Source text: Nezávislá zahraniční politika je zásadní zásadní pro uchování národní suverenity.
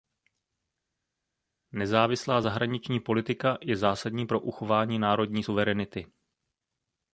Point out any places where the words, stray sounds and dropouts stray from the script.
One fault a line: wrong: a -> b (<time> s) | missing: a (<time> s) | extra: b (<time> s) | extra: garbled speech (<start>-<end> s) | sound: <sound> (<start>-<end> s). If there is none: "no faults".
missing: zásadní (4.3 s)